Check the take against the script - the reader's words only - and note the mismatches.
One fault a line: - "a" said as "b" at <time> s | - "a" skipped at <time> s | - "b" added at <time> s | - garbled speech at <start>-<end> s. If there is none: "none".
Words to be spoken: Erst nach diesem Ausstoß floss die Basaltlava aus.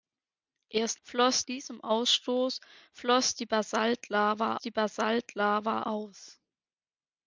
- "nach" said as "floss" at 1.0 s
- "die Basaltlava" added at 4.6 s